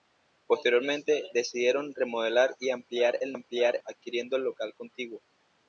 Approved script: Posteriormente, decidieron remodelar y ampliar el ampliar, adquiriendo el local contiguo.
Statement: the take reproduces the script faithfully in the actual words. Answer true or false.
true